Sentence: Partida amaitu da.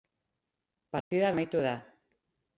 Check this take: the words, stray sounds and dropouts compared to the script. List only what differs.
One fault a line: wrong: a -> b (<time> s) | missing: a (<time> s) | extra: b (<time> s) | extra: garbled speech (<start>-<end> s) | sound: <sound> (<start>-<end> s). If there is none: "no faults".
sound: dropout (1.0-1.1 s)